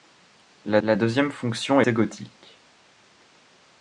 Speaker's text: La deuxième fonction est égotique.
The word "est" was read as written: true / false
false